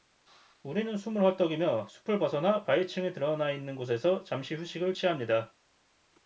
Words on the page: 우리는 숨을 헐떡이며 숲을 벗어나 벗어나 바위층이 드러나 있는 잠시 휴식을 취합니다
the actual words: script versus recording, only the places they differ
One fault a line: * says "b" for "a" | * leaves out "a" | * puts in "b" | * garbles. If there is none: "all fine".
* leaves out "벗어나"
* puts in "곳에서"